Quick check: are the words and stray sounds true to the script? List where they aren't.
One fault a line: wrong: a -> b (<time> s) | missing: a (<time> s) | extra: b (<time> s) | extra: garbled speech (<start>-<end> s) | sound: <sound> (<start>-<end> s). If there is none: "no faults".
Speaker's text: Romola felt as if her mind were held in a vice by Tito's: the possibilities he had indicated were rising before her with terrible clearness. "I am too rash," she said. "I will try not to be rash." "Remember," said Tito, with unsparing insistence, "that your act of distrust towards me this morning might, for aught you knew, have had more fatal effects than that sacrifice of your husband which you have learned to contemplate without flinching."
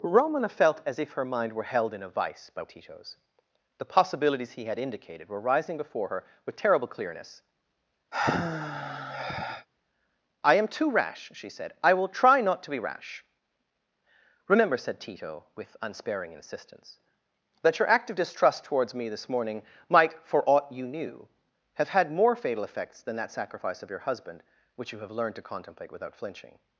sound: sigh (8.1-9.7 s)